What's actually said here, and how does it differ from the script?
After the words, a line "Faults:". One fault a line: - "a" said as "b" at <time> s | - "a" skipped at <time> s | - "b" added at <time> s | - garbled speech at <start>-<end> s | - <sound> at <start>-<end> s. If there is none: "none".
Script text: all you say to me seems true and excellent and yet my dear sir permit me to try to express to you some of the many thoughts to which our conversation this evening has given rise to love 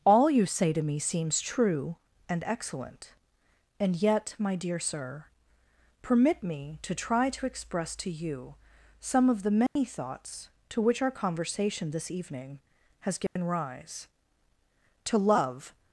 all you say to me seems true and excellent and yet my dear sir permit me to try to express to you some of the many thoughts to which our conversation this evening has given rise to love
Faults:
- dropout at 9.7-9.8 s
- dropout at 13.3-13.4 s